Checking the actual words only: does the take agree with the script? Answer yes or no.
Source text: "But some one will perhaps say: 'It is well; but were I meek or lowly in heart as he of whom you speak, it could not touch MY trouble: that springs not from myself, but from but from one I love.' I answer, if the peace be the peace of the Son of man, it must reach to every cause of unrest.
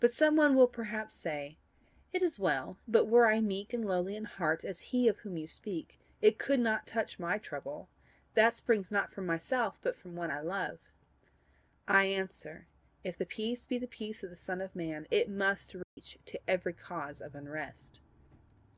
no